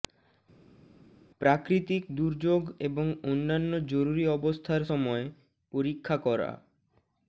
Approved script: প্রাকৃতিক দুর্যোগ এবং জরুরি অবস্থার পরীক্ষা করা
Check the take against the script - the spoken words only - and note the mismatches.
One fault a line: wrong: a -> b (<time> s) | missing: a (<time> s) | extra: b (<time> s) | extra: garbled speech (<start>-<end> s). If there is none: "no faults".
extra: অন্যান্য (3.2 s)
extra: সময় (4.9 s)